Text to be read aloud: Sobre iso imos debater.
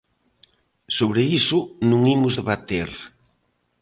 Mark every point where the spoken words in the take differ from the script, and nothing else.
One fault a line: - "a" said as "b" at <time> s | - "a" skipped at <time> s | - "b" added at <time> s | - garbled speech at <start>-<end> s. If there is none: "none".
- "non" added at 1.9 s